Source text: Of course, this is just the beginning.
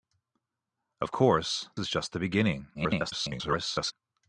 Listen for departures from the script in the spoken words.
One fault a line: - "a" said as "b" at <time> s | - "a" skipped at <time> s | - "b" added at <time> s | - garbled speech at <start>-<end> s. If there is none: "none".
- "this" skipped at 1.7 s
- garbled speech at 2.7-3.9 s